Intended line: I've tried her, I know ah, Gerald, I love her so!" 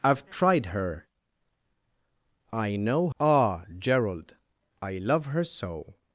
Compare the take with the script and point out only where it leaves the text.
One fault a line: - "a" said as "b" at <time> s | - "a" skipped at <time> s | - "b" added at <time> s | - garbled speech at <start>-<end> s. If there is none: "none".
none